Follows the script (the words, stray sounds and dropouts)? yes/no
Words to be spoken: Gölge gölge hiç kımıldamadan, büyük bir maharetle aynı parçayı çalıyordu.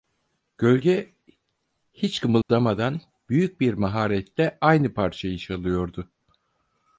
no